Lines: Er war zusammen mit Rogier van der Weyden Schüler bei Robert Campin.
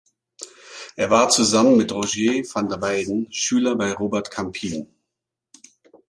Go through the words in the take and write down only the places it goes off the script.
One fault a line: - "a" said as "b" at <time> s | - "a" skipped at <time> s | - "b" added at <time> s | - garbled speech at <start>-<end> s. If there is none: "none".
none